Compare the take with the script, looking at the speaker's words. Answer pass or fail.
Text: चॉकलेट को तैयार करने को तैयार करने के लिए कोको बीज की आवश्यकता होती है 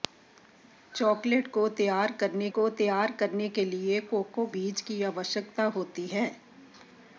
pass